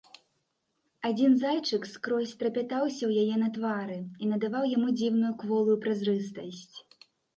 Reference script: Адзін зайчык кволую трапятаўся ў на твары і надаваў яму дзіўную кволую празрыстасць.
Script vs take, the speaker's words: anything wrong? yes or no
yes